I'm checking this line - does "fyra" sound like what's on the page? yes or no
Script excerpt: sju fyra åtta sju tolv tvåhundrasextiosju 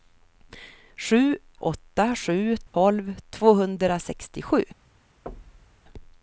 no